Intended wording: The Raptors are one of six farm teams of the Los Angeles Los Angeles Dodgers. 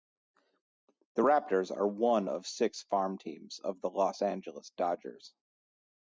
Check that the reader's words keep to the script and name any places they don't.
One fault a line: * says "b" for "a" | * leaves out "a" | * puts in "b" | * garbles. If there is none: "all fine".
* leaves out "Los Angeles"